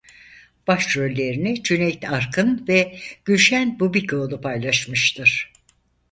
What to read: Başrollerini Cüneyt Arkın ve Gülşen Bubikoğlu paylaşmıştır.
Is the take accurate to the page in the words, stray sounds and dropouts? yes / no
yes